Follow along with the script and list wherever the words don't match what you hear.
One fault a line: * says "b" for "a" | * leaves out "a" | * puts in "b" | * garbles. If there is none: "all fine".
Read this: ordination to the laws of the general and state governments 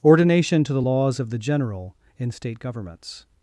* says "in" for "and"